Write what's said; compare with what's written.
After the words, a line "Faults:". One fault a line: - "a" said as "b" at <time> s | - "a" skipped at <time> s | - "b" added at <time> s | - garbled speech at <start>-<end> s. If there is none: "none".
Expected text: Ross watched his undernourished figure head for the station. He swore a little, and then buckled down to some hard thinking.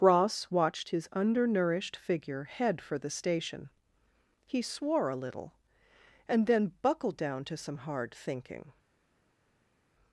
Ross watched his undernourished figure head for the station. He swore a little, and then buckled down to some hard thinking.
Faults:
none